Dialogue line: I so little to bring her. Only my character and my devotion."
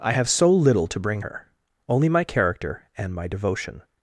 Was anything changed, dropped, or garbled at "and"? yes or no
no